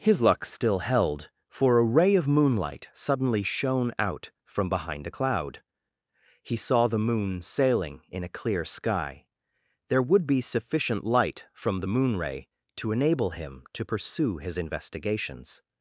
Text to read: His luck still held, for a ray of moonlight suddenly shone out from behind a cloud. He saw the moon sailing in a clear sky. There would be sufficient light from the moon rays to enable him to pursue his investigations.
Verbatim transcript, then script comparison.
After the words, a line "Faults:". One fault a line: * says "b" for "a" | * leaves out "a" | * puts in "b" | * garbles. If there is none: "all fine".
His luck still held, for a ray of moonlight suddenly shone out from behind a cloud. He saw the moon sailing in a clear sky. There would be sufficient light from the moon ray to enable him to pursue his investigations.
Faults:
* says "ray" for "rays"